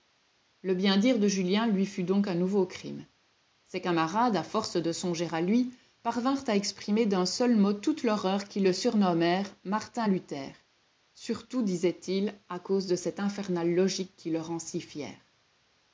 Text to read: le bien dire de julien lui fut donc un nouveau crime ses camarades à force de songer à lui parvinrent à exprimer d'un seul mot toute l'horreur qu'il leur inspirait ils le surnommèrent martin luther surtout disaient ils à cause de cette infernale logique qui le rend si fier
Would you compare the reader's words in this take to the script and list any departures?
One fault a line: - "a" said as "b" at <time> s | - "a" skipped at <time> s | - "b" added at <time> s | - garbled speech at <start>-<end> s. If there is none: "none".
- "leur inspirait ils" skipped at 8.7 s